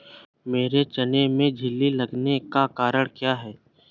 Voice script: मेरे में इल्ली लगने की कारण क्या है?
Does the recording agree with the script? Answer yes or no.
no